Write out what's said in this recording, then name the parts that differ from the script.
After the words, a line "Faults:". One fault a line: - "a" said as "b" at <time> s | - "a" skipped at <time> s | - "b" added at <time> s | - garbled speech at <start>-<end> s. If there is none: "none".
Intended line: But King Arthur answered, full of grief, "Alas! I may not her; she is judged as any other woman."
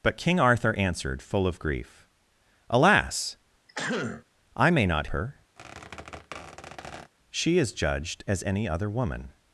But King Arthur answered, full of grief, "Alas! I may not her; she is judged as any other woman."
Faults:
none